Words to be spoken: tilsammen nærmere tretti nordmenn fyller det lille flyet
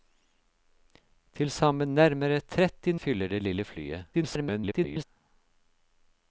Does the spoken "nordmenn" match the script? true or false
false